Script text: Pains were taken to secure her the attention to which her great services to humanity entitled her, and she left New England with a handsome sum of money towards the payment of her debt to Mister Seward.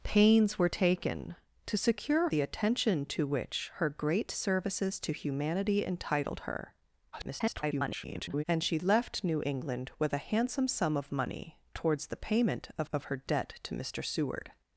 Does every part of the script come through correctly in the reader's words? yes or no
no